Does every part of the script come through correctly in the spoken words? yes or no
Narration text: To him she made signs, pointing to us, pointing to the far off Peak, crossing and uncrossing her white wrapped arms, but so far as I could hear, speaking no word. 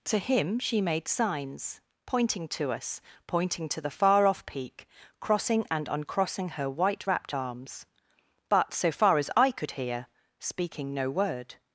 yes